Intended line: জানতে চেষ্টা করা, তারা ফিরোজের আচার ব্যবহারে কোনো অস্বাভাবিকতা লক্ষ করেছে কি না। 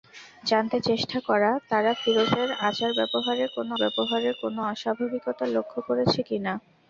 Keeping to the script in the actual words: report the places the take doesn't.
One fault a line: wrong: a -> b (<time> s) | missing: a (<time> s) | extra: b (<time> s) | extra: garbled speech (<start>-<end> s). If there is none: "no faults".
extra: ব্যবহারে কোনো (3.8 s)